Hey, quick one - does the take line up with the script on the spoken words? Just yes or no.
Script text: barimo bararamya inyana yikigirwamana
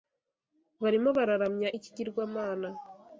no